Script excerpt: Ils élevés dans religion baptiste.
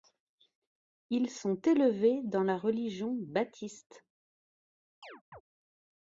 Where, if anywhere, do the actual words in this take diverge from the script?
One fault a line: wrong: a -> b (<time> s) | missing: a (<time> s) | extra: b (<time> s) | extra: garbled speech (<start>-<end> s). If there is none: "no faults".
extra: sont (1.3 s)
extra: la (2.4 s)